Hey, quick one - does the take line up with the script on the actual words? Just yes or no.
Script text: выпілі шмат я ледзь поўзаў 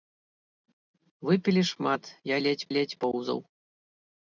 no